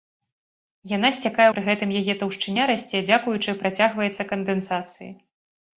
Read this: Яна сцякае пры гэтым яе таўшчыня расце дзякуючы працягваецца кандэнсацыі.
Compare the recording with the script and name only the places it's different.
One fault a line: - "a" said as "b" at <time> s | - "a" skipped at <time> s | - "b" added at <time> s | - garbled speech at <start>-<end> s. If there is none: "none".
none